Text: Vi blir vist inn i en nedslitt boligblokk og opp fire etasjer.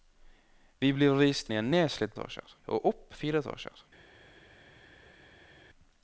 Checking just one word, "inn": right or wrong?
wrong